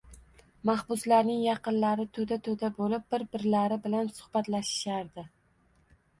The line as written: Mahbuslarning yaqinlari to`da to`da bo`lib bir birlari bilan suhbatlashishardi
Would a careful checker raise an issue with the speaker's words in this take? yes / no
no